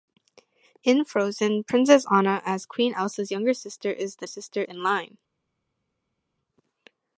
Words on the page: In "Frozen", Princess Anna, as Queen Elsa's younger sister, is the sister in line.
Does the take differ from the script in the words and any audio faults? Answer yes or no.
no